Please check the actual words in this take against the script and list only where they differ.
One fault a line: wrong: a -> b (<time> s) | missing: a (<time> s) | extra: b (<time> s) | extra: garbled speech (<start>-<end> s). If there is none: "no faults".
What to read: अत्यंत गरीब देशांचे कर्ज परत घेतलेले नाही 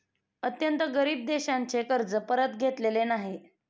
no faults